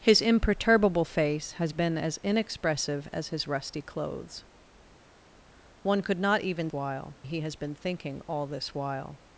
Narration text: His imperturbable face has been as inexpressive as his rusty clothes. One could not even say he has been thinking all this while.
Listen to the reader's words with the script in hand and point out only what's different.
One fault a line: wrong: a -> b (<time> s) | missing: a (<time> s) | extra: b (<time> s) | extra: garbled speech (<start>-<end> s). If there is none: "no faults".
wrong: say -> while (6.7 s)